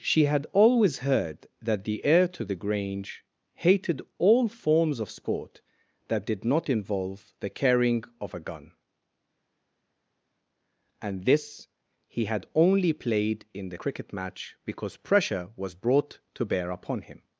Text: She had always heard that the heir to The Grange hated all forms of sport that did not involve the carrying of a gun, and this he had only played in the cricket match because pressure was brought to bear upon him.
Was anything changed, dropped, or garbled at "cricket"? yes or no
no